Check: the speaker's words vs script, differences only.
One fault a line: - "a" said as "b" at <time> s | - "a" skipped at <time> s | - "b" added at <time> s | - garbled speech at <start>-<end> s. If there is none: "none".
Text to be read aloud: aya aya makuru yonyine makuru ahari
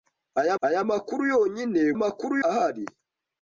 none